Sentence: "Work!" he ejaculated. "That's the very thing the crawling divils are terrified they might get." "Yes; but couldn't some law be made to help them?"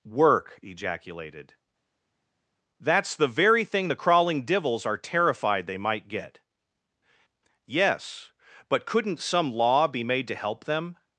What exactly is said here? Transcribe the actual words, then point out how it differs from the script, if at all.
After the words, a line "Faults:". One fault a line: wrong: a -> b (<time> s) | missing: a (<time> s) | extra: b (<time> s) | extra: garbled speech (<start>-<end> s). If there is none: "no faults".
"Work!" ejaculated. "That's the very thing the crawling divils are terrified they might get." "Yes; but couldn't some law be made to help them?"
Faults:
missing: he (0.6 s)